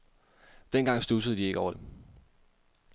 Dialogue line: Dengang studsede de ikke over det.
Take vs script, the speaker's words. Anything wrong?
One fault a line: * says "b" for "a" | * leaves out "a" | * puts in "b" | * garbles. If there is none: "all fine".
all fine